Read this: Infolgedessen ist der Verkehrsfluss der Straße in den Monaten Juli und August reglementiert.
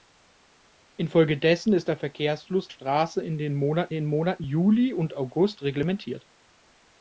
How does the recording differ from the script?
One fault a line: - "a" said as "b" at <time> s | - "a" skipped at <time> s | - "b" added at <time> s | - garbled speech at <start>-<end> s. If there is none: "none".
- "der" skipped at 2.7 s
- "den Monaten" added at 3.9 s